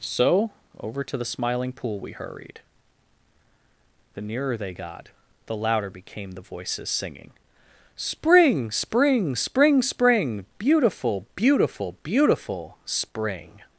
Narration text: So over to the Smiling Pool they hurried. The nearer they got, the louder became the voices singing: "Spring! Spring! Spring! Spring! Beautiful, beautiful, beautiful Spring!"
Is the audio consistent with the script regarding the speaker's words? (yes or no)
no